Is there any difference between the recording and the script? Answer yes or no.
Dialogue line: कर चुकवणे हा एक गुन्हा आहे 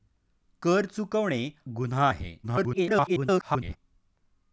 yes